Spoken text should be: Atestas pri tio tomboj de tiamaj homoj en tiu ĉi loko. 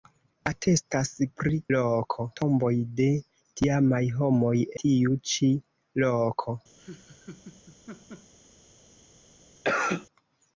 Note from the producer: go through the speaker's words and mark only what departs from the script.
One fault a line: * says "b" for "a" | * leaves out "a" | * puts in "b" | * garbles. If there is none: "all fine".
* says "loko" for "tio"
* leaves out "en"